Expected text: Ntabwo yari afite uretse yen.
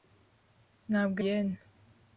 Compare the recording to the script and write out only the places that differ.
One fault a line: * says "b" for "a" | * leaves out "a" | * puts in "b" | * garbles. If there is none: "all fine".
* leaves out "yari afite uretse"